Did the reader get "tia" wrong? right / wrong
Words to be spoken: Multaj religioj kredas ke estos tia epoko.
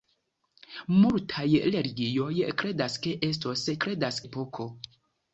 wrong